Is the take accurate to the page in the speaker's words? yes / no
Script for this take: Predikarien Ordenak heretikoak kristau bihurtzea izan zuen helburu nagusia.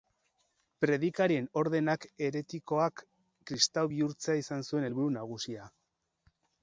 yes